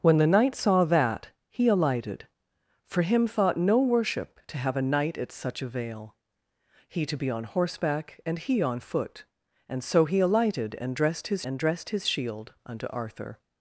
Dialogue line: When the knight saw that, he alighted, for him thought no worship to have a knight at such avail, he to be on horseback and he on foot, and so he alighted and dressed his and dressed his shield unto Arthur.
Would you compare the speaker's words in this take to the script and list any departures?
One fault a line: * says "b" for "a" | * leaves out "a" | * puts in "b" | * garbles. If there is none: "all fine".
all fine